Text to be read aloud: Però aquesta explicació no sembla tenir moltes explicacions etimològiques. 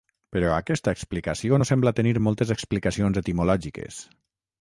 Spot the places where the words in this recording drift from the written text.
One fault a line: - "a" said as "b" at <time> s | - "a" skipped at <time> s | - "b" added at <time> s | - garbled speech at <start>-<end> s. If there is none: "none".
none